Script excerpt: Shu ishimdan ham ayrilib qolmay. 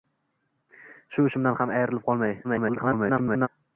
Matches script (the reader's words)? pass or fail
fail